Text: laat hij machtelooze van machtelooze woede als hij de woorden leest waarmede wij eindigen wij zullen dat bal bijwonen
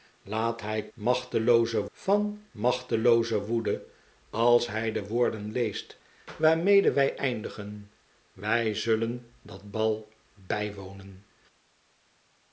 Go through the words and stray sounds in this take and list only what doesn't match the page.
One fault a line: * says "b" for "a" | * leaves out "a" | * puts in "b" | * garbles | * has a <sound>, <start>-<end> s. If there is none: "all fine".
all fine